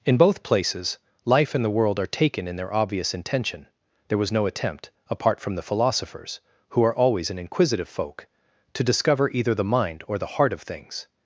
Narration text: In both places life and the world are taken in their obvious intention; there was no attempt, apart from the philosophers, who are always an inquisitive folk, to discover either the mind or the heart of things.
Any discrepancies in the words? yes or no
no